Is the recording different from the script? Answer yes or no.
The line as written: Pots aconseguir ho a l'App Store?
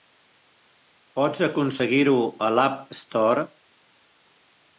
no